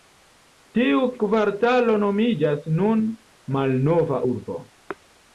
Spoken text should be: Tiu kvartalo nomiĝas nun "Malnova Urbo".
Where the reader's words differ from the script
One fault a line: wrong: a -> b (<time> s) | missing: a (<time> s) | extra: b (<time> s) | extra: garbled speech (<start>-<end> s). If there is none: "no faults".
no faults